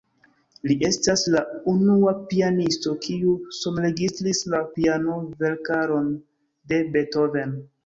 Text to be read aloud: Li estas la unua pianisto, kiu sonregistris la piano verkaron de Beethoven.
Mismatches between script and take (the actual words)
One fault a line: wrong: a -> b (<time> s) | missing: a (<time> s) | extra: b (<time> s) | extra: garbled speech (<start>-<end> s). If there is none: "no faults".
no faults